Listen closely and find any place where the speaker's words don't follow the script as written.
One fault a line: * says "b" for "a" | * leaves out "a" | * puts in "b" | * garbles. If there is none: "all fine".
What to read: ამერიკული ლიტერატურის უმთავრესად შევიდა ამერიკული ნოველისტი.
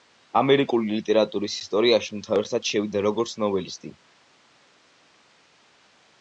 * puts in "ისტორიაში"
* says "როგორც" for "ამერიკული"